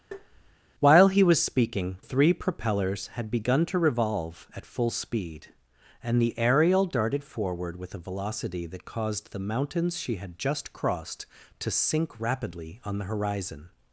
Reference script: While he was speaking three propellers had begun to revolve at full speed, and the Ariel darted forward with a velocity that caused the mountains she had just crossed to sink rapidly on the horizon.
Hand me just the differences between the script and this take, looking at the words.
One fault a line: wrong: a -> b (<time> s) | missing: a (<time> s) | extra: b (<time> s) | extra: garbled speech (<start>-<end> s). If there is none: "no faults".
no faults